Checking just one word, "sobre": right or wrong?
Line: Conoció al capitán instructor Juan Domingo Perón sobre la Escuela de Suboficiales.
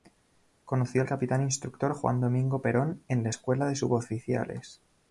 wrong